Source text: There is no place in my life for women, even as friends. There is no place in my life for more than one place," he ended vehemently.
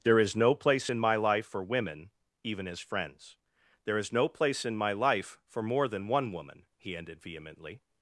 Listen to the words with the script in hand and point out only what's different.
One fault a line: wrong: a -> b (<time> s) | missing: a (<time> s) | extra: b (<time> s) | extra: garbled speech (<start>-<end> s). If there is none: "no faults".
wrong: place -> woman (6.3 s)